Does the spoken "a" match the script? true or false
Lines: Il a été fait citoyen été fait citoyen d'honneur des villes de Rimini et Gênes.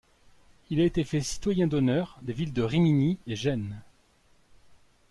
true